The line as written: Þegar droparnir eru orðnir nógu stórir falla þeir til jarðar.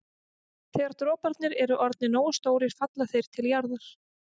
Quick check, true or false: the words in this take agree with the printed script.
true